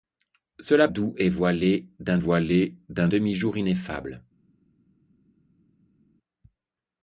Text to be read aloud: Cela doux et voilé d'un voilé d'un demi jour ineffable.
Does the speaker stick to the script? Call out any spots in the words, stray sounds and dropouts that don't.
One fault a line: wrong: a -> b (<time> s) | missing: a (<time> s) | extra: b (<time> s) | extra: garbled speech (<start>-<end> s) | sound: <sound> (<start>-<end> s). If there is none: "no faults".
no faults